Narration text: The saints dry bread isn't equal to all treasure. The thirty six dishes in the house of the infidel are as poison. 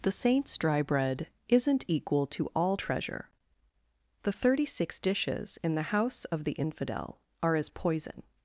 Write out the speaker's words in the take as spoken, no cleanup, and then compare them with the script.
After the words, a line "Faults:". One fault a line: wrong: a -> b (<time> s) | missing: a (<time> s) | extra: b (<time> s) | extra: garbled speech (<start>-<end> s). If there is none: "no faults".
The saints dry bread isn't equal to all treasure. The thirty six dishes in the house of the infidel are as poison.
Faults:
no faults